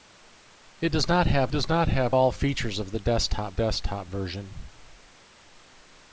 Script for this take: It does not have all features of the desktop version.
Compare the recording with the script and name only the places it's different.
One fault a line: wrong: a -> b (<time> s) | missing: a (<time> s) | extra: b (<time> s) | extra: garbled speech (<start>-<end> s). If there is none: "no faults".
extra: does not have (1.5 s)
extra: desktop (3.5 s)